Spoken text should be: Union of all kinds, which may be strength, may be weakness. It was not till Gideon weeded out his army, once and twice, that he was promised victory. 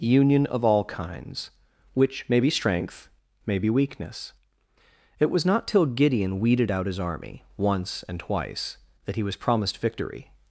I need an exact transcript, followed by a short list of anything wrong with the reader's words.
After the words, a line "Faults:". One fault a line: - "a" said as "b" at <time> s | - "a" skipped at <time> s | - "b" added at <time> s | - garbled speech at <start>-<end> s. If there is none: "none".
Union of all kinds, which may be strength, may be weakness. It was not till Gideon weeded out his army, once and twice, that he was promised victory.
Faults:
none